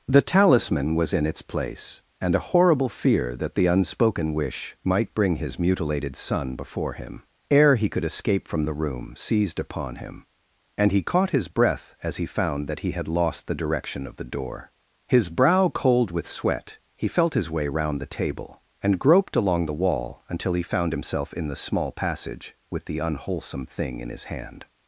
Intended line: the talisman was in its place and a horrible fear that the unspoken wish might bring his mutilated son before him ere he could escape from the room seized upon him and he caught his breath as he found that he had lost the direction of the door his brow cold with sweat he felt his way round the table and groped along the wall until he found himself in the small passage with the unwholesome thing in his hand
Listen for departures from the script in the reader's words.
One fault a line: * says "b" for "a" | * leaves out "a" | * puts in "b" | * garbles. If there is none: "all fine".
all fine